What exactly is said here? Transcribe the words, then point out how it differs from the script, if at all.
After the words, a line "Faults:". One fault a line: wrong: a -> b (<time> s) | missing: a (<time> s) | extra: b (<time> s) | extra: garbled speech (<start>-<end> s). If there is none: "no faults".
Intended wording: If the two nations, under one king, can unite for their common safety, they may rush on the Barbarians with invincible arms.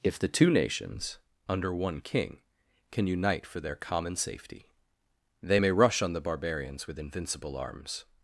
If the two nations, under one king, can unite for their common safety, they may rush on the Barbarians with invincible arms.
Faults:
no faults